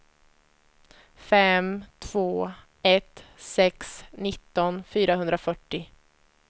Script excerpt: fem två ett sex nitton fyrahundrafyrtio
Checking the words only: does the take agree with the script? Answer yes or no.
yes